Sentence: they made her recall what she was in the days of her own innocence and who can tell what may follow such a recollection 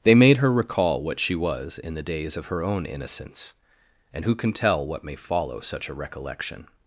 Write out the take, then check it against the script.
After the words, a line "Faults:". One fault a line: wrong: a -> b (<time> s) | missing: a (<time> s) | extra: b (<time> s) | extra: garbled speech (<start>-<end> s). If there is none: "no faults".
they made her recall what she was in the days of her own innocence and who can tell what may follow such a recollection
Faults:
no faults